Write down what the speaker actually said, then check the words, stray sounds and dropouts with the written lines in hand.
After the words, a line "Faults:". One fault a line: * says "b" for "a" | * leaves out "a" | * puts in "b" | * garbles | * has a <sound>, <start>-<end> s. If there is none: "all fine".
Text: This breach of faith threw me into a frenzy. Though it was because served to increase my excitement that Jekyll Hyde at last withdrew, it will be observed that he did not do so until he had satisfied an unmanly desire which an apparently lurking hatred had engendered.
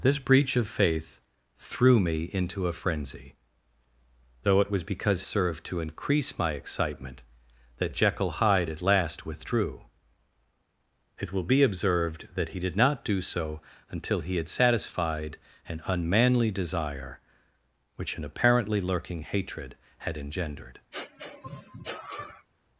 This breach of faith threw me into a frenzy. Though it was because served to increase my excitement that Jekyll Hyde at last withdrew, it will be observed that he did not do so until he had satisfied an unmanly desire which an apparently lurking hatred had engendered.
Faults:
* has a sniff, 20.9-22.5 s